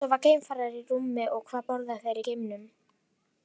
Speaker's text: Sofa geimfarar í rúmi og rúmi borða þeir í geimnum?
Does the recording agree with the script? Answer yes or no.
no